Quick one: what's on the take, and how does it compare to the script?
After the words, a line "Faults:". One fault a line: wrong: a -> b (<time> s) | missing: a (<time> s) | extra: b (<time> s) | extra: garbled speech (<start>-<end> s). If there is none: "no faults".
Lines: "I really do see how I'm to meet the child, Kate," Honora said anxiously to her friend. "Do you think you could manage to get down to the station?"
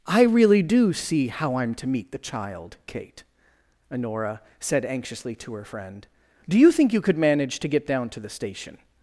"I really do see how I'm to meet the child, Kate," Honora said anxiously to her friend. "Do you think you could manage to get down to the station?"
Faults:
no faults